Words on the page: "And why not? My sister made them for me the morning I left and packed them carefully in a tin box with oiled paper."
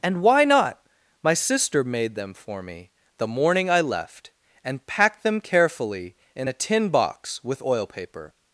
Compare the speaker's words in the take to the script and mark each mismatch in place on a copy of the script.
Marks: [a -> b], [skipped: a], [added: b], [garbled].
"And why not? My sister made them for me the morning I left and packed them carefully in a tin box with [oiled -> oil] paper."